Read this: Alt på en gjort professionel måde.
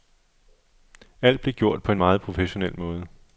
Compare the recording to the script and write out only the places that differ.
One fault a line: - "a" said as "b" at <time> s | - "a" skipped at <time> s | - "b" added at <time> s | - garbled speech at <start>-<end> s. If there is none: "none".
- "blev gjort" added at 1.4 s
- "gjort" said as "meget" at 2.0 s